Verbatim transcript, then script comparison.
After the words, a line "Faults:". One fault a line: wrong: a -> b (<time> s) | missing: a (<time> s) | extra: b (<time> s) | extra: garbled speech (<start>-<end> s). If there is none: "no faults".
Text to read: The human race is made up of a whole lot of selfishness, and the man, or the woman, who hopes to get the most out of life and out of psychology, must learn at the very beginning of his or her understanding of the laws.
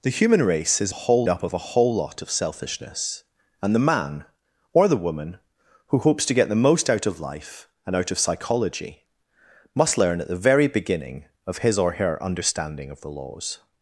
The human race is whole up of a whole lot of selfishness, and the man, or the woman, who hopes to get the most out of life and out of psychology, must learn at the very beginning of his or her understanding of the laws.
Faults:
wrong: made -> whole (0.9 s)